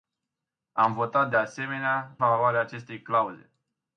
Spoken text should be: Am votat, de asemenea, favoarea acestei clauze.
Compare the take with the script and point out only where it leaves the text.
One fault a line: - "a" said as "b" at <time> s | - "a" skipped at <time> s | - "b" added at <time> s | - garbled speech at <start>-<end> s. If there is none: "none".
none